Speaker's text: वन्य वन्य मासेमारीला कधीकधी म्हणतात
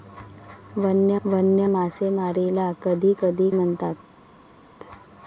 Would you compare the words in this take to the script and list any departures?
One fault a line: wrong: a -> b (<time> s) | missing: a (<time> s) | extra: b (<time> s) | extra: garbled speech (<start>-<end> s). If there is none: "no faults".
no faults